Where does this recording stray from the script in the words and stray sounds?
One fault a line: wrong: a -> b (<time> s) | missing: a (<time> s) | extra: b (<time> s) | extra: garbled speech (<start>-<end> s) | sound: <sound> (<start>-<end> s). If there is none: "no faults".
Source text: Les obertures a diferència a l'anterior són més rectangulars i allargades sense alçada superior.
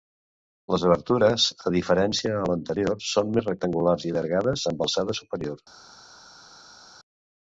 wrong: sense -> amb (4.8 s)